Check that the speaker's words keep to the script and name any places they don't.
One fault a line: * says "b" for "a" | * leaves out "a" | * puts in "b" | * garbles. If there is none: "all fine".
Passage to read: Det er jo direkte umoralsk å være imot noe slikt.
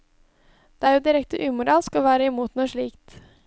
all fine